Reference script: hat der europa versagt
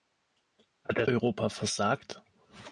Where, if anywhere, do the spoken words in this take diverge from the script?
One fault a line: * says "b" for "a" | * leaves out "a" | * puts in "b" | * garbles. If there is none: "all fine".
all fine